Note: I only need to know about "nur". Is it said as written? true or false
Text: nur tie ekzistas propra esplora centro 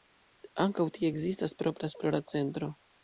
false